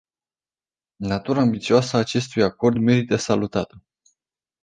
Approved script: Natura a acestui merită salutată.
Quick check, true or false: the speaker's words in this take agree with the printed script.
false